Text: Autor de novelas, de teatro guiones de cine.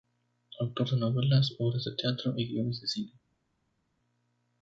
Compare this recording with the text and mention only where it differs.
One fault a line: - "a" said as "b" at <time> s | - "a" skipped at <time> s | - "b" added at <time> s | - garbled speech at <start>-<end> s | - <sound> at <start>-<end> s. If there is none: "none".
- "obras" added at 1.6 s
- "y" added at 2.4 s